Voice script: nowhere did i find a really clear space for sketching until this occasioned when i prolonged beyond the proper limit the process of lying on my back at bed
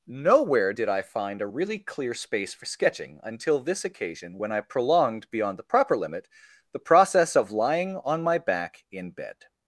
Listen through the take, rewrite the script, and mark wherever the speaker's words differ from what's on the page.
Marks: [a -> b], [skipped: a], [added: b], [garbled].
nowhere did i find a really clear space for sketching until this [occasioned -> occasion] when i prolonged beyond the proper limit the process of lying on my back [at -> in] bed